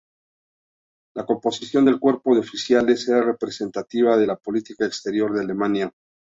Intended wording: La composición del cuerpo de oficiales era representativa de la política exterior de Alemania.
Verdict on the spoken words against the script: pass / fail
pass